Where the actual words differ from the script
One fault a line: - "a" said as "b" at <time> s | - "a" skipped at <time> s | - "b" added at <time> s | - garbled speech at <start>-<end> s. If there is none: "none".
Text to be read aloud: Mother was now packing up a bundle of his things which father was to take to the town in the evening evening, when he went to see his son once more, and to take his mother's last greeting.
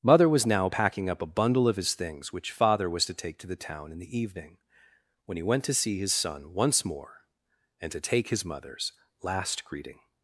- "evening" skipped at 4.6 s